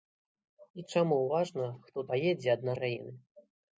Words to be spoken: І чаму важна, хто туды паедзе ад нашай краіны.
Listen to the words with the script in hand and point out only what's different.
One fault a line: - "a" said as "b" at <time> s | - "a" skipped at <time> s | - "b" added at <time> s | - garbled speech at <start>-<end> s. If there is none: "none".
- "туды" skipped at 2.1 s
- "нашай" skipped at 2.7 s